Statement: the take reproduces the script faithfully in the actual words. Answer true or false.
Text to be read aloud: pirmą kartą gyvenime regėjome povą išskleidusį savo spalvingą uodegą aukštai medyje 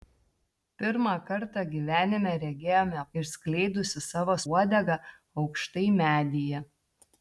false